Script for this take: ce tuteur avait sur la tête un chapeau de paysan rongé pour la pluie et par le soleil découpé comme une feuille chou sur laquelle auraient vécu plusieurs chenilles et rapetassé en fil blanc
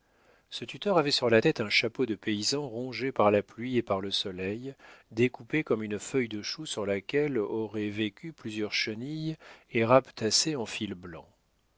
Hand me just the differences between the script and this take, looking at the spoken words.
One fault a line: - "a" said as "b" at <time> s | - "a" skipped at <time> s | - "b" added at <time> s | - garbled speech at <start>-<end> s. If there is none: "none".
- "pour" said as "par" at 3.1 s
- "de" added at 6.3 s